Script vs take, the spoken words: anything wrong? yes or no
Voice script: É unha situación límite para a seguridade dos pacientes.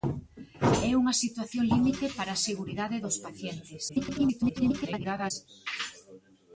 yes